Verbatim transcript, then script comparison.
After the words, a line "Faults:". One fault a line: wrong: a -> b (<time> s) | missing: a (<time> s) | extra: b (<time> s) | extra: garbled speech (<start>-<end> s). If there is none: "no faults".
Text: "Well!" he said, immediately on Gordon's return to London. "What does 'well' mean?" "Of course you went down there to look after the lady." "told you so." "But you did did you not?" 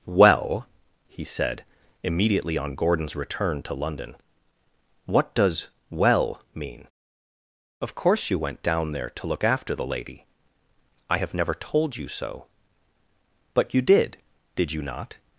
"Well!" he said, immediately on Gordon's return to London. "What does 'well' mean?" "Of course you went down there to look after the lady." "I have never told you so." "But you did did you not?"
Faults:
extra: I have never (11.1 s)